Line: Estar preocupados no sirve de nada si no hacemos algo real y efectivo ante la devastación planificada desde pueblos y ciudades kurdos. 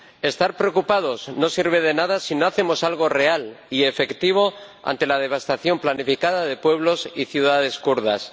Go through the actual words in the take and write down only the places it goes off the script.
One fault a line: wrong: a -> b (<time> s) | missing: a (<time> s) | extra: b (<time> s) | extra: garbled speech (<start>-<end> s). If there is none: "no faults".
wrong: desde -> de (6.5 s)